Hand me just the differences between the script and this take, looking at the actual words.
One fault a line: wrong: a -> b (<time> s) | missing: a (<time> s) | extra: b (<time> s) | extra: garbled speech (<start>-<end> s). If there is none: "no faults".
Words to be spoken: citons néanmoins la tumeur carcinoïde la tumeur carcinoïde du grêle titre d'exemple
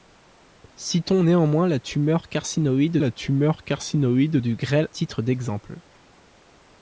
no faults